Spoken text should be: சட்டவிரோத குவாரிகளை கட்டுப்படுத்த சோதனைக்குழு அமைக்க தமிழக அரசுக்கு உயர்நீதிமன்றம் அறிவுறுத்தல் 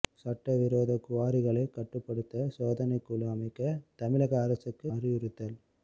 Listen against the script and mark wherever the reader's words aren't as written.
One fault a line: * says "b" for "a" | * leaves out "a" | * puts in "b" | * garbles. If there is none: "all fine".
* leaves out "உயர்நீதிமன்றம்"